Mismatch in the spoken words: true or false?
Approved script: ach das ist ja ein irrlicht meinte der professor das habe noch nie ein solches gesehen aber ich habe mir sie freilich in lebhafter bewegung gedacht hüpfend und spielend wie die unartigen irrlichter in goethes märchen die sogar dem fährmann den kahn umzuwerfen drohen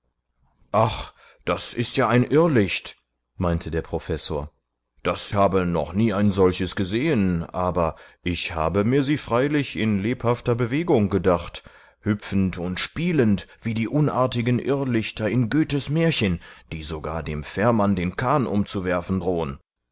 false